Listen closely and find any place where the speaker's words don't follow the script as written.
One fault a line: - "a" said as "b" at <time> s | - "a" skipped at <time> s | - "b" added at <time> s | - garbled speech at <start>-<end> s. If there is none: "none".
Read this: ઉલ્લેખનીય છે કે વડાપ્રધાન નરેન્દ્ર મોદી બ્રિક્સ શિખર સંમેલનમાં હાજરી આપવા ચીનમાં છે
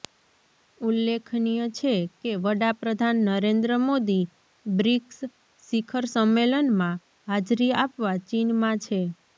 none